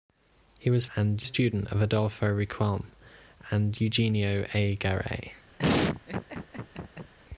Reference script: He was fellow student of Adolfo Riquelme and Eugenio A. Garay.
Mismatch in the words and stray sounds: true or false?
true